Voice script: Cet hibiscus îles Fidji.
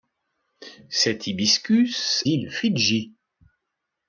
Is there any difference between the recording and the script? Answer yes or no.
no